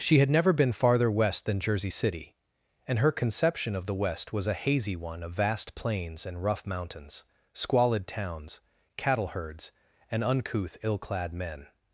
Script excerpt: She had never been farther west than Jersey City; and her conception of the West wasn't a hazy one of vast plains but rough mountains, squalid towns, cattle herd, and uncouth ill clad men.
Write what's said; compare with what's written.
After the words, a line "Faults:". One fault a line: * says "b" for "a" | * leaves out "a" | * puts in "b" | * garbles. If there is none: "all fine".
She had never been farther west than Jersey City; and her conception of the West was a hazy one of vast plains and rough mountains, squalid towns, cattle herds, and uncouth ill clad men.
Faults:
* says "was" for "wasn't"
* says "and" for "but"
* says "herds" for "herd"